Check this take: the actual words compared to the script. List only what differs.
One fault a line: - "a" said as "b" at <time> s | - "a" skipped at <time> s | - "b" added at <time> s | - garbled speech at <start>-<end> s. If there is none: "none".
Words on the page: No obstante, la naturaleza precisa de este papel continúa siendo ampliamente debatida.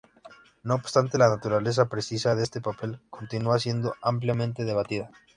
none